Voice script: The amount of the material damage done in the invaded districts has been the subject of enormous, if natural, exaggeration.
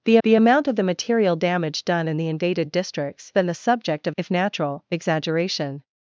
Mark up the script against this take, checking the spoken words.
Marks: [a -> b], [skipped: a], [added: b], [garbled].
The [added: the] amount of the material damage done in the invaded districts [skipped: has] been the subject of [skipped: enormous,] if natural, exaggeration.